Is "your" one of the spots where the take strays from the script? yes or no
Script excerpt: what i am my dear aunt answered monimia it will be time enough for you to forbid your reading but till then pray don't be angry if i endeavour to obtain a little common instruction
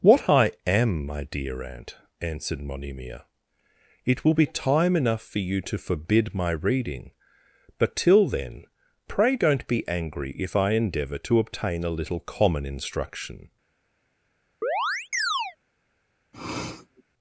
yes